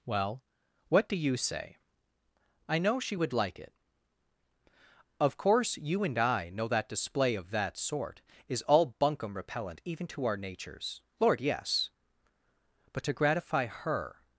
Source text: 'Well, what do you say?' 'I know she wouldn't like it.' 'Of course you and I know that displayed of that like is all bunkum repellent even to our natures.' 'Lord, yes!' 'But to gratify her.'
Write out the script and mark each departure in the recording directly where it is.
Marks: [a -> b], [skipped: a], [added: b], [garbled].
'Well, what do you say?' 'I know she [wouldn't -> would] like it.' 'Of course you and I know that [displayed -> display] of that [like -> sort] is all bunkum repellent even to our natures.' 'Lord, yes!' 'But to gratify her.'